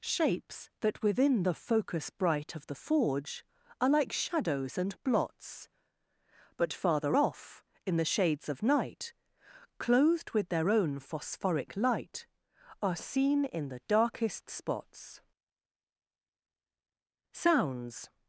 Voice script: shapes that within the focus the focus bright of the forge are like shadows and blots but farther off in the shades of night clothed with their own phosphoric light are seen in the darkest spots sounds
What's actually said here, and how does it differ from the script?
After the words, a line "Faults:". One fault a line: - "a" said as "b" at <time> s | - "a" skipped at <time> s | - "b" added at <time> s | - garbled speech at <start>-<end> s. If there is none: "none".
shapes that within the focus bright of the forge are like shadows and blots but farther off in the shades of night clothed with their own phosphoric light are seen in the darkest spots sounds
Faults:
- "the focus" skipped at 2.1 s